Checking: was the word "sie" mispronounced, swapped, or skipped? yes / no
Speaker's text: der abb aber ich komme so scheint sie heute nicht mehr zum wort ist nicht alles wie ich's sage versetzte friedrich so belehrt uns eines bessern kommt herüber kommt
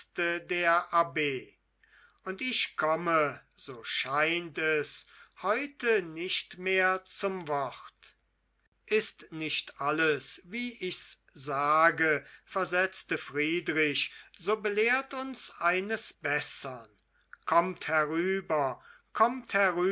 yes